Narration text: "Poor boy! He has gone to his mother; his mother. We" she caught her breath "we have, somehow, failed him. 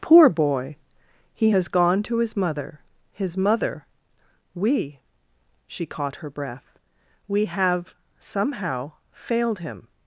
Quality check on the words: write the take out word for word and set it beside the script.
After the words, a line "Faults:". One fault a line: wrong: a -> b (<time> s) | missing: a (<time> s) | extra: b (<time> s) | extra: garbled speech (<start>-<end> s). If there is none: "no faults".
"Poor boy! He has gone to his mother; his mother. We" she caught her breath "we have, somehow, failed him.
Faults:
no faults